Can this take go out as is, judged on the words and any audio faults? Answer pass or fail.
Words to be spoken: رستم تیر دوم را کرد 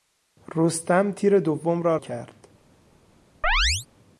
fail